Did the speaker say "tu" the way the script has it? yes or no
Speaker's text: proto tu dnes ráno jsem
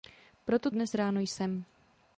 no